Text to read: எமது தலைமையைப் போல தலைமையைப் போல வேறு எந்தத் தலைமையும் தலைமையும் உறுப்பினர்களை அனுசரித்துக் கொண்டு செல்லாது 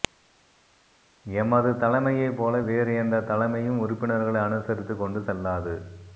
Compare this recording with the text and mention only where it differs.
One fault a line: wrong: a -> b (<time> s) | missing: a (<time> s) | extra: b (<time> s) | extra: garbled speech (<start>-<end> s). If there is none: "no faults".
missing: தலைமையைப் போல (2.6 s)
missing: தலைமையும் (3.8 s)